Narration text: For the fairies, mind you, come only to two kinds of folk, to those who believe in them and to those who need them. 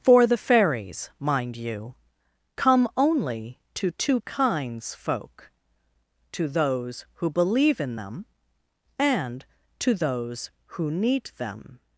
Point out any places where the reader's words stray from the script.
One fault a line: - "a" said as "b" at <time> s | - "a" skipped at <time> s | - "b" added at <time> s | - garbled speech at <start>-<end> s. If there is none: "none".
- "of" skipped at 5.0 s